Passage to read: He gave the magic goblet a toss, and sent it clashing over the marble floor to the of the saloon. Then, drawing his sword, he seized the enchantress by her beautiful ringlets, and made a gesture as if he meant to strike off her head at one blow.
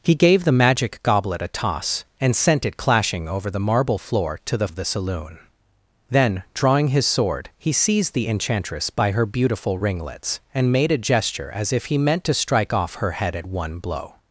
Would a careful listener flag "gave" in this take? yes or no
no